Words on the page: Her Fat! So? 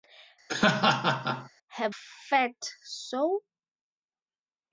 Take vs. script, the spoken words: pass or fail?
pass